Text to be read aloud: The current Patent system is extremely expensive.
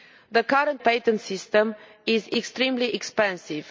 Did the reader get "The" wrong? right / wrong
right